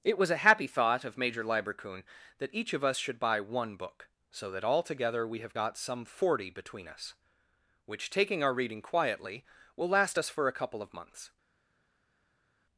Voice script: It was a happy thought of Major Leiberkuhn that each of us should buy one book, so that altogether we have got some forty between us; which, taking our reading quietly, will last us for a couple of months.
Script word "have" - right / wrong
right